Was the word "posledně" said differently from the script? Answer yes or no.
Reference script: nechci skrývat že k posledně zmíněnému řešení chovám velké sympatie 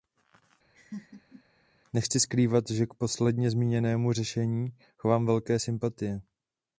no